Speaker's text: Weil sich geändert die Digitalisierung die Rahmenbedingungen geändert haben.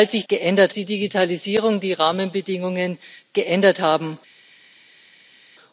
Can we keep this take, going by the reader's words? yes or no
yes